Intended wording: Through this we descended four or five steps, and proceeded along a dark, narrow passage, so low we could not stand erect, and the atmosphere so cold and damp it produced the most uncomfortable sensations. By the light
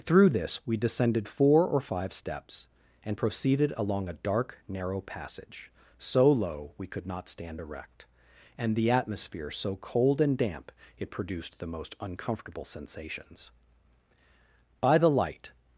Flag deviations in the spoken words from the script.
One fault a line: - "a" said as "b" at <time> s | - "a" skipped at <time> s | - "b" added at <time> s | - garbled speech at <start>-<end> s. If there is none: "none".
none